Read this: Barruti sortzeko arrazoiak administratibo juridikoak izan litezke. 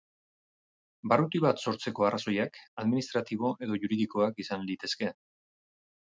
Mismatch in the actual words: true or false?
true